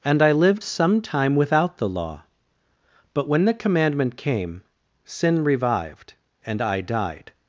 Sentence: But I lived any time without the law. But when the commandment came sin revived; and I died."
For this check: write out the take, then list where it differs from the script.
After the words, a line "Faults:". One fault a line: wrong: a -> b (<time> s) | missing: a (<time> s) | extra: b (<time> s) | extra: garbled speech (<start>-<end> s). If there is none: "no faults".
And I lived some time without the law. But when the commandment came sin revived; and I died."
Faults:
wrong: But -> And (0.0 s)
wrong: any -> some (0.6 s)